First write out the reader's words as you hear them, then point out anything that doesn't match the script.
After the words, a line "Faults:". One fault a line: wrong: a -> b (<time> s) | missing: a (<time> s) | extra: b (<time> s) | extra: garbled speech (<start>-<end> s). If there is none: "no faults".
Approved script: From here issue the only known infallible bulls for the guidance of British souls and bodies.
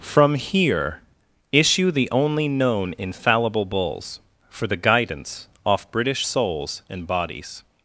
From here issue the only known infallible bulls for the guidance off British souls and bodies.
Faults:
wrong: of -> off (5.7 s)